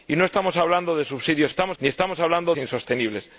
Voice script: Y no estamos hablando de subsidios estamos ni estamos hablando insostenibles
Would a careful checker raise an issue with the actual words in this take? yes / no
no